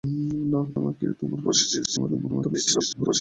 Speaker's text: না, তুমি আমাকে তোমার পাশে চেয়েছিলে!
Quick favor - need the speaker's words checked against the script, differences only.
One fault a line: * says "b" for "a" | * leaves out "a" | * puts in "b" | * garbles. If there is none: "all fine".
* leaves out "তুমি"
* garbles